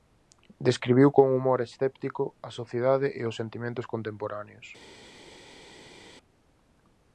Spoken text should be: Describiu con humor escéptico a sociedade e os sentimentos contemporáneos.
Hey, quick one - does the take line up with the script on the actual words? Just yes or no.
yes